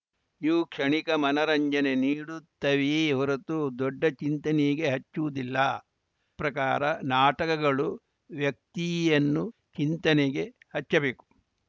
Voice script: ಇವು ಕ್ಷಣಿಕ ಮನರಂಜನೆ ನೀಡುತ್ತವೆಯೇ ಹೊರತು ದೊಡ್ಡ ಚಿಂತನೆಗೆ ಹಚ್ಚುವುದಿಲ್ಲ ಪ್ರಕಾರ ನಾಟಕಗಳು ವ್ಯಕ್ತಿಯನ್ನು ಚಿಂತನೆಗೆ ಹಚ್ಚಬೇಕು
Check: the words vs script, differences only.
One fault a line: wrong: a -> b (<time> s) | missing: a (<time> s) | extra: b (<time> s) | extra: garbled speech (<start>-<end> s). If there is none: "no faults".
no faults